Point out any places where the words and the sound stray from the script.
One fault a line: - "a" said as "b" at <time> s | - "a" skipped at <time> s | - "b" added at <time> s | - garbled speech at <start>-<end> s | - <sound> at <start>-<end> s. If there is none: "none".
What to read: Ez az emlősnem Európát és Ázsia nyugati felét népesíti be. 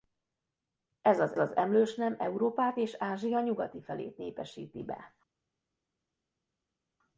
- "az" added at 1.4 s